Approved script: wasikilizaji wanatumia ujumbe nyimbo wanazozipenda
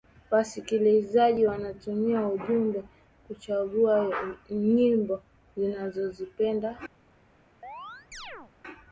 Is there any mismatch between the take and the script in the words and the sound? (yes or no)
yes